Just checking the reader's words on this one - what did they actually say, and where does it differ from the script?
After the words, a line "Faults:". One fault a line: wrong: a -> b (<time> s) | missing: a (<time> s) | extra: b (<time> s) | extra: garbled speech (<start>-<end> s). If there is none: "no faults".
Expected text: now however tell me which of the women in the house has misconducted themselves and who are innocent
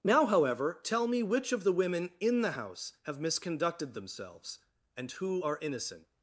now however tell me which of the women in the house have misconducted themselves and who are innocent
Faults:
wrong: has -> have (3.0 s)